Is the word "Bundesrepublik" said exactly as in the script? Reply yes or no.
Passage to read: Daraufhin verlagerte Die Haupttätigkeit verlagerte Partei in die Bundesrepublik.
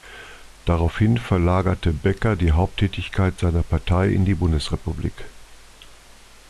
yes